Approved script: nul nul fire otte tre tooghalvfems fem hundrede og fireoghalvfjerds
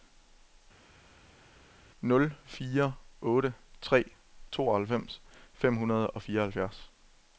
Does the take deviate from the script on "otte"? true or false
false